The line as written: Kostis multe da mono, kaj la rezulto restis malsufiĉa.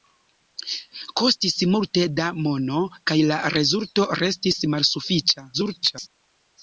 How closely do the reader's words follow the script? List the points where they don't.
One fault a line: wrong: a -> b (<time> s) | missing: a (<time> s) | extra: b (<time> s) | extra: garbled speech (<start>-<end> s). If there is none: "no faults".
extra: garbled speech (5.5-6.1 s)